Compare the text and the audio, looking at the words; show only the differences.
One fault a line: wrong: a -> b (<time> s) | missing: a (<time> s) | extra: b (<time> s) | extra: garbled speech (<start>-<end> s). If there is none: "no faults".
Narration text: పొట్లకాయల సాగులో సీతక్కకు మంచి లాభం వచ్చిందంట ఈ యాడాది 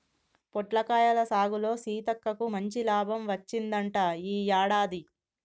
no faults